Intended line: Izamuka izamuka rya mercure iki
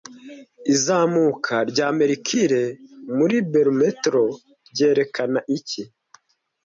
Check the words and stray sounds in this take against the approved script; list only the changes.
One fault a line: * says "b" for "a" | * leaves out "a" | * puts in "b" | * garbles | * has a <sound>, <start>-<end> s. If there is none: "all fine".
* leaves out "izamuka"
* puts in "muri barometero ryerekana"